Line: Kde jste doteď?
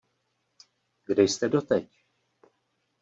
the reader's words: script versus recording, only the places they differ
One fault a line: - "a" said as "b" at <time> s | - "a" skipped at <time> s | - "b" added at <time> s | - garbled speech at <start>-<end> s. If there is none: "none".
none